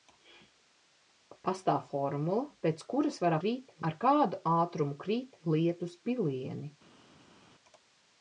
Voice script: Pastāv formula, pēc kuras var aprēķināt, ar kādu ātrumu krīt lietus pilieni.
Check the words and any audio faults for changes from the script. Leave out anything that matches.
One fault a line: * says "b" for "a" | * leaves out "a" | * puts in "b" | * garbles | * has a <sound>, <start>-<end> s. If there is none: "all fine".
* says "krīt" for "aprēķināt"